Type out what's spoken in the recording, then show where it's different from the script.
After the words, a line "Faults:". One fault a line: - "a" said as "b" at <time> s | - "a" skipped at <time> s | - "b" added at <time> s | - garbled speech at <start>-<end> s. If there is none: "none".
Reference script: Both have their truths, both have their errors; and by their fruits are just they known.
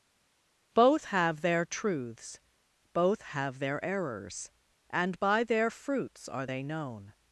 Both have their truths, both have their errors; and by their fruits are they known.
Faults:
- "just" skipped at 6.5 s